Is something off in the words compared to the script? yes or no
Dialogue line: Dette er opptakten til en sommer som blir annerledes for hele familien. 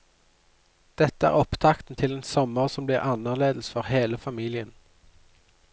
no